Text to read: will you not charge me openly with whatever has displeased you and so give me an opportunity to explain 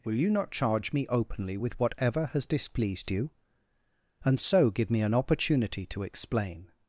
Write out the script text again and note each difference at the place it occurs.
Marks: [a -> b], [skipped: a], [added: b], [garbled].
will you not charge me openly with whatever has displeased you and so give me an opportunity to explain